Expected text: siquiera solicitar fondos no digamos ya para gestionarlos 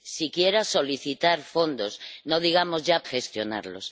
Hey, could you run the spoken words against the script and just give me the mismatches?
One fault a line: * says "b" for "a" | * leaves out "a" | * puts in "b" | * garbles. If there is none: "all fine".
* leaves out "para"